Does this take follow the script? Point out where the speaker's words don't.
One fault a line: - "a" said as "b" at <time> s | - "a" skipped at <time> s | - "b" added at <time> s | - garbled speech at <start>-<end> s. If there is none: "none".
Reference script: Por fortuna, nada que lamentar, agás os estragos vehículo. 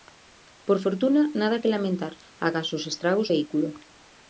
none